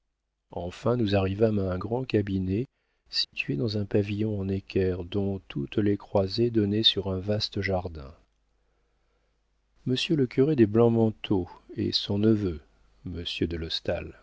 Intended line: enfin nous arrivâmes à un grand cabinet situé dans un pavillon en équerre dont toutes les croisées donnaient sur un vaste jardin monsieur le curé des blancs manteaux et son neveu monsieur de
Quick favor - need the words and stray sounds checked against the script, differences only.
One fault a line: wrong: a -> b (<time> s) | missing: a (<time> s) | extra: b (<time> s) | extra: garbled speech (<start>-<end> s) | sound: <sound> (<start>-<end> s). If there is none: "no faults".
sound: dropout (3.2-3.3 s)